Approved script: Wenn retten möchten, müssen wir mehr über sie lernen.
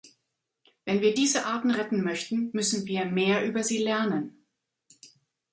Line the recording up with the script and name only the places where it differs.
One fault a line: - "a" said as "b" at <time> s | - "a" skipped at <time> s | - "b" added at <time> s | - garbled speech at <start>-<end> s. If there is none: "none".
- "wir diese Arten" added at 1.0 s